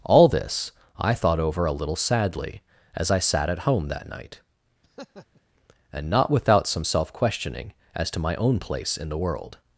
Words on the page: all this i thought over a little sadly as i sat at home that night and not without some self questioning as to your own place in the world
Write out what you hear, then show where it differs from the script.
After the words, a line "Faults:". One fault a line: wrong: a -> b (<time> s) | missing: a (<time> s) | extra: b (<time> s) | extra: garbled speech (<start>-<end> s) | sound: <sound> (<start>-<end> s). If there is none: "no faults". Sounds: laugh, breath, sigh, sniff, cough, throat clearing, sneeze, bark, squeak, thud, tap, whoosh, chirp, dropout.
all this i thought over a little sadly as i sat at home that night and not without some self questioning as to my own place in the world
Faults:
sound: laugh (4.8-5.4 s)
wrong: your -> my (8.2 s)